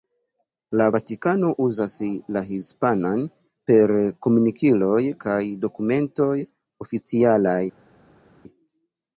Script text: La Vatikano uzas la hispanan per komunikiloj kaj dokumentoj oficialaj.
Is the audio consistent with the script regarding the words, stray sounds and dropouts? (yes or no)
yes